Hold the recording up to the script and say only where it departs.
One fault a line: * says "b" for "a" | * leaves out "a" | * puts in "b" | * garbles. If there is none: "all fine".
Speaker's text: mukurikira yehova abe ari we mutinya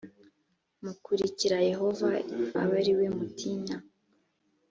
all fine